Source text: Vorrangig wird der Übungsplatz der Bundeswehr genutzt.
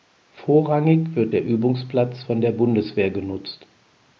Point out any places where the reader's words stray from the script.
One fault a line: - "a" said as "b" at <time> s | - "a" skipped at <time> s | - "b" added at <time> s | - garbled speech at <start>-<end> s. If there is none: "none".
- "von" added at 2.2 s